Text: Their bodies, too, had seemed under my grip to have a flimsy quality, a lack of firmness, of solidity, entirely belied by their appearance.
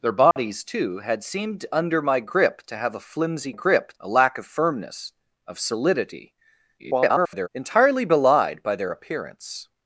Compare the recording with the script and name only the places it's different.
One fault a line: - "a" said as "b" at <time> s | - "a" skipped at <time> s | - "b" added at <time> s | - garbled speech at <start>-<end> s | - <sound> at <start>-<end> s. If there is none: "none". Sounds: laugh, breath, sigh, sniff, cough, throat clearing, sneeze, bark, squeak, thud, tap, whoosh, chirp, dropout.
- dropout at 0.3-0.4 s
- "quality" said as "grip" at 3.5 s
- garbled speech at 6.8-7.5 s